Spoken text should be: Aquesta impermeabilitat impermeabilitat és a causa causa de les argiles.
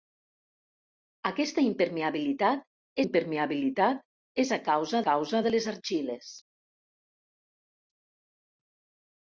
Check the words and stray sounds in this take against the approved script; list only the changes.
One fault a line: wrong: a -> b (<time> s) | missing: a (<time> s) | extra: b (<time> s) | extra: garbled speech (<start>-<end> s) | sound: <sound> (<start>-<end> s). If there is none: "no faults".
no faults